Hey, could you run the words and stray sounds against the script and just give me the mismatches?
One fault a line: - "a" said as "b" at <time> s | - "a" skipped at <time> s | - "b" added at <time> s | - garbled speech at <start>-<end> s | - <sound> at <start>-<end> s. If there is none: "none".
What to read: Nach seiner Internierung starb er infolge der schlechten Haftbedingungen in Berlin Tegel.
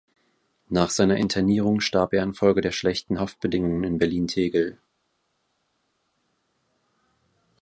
none